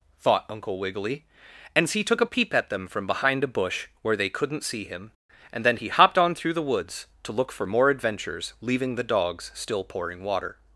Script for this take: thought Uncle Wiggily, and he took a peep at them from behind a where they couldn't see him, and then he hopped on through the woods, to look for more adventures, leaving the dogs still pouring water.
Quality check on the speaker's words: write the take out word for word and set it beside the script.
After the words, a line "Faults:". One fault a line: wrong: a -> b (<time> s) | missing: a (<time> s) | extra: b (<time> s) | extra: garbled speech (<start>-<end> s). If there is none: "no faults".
thought Uncle Wiggily, and he took a peep at them from behind a bush where they couldn't see him, and then he hopped on through the woods, to look for more adventures, leaving the dogs still pouring water.
Faults:
extra: bush (3.5 s)